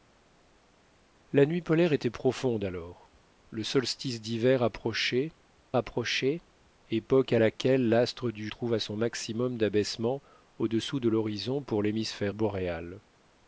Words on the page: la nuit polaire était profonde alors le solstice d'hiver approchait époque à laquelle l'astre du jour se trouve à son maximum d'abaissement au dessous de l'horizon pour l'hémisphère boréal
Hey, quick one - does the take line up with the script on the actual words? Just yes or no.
no